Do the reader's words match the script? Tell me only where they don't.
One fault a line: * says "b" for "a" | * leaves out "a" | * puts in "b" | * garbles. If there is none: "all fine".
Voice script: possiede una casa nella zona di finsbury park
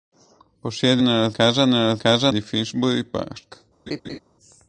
* says "nella" for "una"
* says "casa" for "zona"